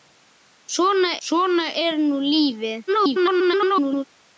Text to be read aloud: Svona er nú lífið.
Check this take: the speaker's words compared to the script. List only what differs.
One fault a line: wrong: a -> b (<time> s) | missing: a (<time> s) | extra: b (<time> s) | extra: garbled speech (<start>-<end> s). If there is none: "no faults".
extra: svona (1.3 s)
extra: garbled speech (2.9-4.0 s)